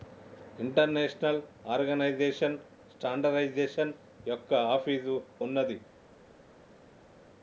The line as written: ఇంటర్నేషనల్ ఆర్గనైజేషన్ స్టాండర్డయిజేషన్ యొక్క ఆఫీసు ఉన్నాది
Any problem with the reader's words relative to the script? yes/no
no